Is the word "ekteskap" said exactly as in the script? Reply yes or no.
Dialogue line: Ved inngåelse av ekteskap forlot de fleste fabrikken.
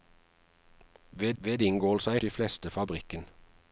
no